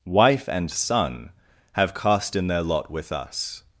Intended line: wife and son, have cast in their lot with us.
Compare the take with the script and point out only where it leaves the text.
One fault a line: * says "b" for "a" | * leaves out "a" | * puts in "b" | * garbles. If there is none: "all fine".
all fine